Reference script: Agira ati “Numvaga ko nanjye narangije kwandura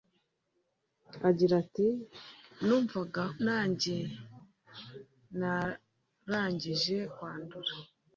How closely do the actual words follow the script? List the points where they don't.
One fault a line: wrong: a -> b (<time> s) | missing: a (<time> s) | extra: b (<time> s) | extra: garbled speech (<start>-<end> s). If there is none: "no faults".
missing: ko (3.2 s)